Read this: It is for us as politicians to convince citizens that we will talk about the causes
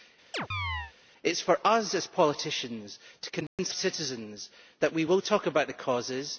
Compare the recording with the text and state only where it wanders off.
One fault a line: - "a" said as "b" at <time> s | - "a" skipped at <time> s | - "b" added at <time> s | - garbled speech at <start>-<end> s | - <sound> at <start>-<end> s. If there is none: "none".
- chirp at 0.3-0.9 s
- dropout at 3.5-3.6 s